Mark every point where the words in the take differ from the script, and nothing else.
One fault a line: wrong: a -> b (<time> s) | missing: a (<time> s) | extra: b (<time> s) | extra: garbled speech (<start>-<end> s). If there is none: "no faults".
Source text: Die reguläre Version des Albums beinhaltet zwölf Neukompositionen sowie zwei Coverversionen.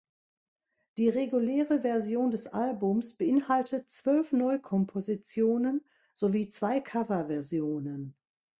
no faults